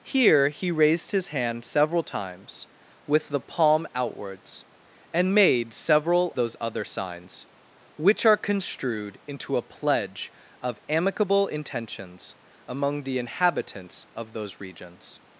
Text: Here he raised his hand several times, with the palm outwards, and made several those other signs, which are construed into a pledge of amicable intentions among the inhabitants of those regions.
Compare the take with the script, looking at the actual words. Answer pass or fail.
pass